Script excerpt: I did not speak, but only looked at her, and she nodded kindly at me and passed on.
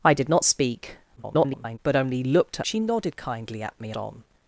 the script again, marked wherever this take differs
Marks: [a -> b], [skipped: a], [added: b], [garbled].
I did not speak, [garbled] but only looked [skipped: at her, and] she nodded kindly at me [skipped: and passed] on.